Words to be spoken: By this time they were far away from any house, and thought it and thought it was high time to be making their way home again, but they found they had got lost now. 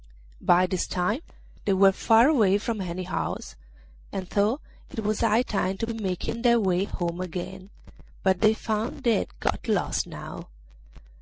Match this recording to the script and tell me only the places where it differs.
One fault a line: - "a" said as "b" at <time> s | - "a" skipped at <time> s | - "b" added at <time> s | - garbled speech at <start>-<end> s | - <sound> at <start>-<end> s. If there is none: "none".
- "and thought it" skipped at 5.0 s